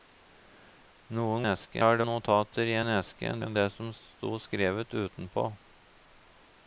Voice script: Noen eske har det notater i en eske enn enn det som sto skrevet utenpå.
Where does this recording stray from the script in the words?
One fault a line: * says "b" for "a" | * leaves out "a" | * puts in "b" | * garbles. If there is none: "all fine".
all fine